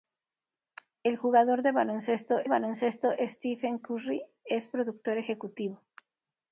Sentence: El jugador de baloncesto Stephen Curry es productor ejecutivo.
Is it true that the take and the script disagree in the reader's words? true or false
true